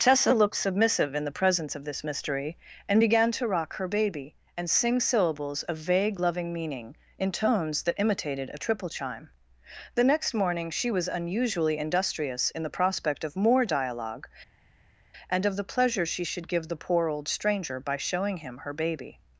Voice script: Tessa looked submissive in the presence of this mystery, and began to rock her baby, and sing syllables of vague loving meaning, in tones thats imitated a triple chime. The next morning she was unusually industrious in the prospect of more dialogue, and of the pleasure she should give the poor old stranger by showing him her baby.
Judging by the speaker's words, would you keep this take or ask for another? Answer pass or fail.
fail